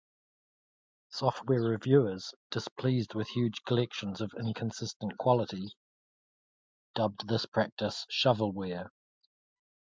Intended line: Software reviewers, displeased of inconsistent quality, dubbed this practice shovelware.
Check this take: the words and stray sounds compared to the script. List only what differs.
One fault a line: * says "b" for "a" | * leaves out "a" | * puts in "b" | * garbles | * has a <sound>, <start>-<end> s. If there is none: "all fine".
* puts in "with huge collections"